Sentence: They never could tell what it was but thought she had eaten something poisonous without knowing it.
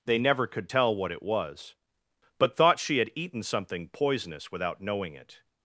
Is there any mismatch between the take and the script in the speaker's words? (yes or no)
no